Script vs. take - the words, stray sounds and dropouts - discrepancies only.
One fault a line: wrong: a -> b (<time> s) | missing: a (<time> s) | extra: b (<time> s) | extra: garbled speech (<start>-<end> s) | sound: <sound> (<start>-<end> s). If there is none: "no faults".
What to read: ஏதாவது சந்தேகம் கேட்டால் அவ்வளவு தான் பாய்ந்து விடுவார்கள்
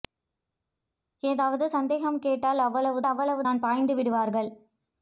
extra: அவ்வளவு (3.1 s)